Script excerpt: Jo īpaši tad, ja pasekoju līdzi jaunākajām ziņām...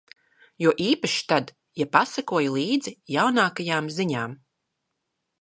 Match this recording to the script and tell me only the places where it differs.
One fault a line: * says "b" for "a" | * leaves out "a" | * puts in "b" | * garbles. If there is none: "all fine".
all fine